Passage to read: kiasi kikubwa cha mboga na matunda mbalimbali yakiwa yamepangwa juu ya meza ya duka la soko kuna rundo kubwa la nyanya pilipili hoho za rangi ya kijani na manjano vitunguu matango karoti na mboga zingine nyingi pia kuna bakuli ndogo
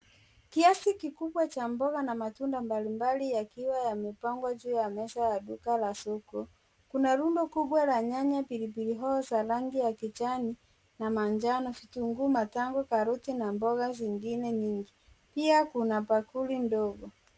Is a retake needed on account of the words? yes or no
no